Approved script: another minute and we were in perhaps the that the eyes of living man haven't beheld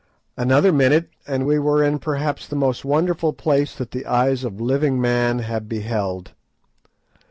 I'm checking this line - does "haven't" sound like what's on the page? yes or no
no